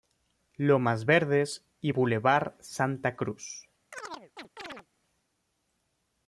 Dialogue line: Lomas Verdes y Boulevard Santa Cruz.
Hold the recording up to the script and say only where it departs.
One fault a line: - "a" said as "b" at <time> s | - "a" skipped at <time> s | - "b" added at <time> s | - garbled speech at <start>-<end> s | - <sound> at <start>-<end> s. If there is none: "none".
- chirp at 3.9-4.9 s